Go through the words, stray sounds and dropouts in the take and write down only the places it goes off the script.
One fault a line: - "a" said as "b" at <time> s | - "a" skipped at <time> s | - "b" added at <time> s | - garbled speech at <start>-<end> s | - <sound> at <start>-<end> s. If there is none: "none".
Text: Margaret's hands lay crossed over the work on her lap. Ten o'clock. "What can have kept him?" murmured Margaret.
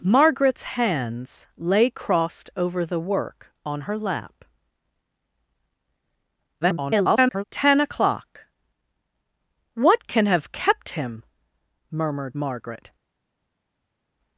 - garbled speech at 6.6-7.4 s